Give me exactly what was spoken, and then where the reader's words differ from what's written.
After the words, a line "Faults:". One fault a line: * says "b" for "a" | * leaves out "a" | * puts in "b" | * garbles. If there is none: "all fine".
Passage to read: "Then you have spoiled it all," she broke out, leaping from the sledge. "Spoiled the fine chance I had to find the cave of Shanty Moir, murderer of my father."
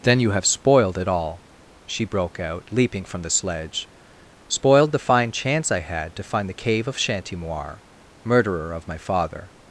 "Then you have spoiled it all," she broke out, leaping from the sledge. "Spoiled the fine chance I had to find the cave of Shanty Moir, murderer of my father."
Faults:
all fine